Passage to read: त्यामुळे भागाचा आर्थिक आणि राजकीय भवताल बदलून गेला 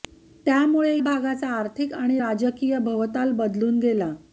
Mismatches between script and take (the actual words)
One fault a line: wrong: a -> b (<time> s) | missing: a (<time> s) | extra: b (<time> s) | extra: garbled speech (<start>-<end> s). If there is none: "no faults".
no faults